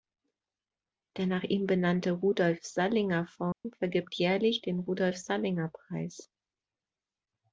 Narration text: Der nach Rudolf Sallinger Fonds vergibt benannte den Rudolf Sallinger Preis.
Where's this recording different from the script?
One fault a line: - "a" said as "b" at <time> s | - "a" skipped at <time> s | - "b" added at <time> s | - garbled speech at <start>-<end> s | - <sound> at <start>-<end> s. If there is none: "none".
- "ihm benannte" added at 1.4 s
- dropout at 3.5-3.6 s
- "benannte" said as "jährlich" at 4.2 s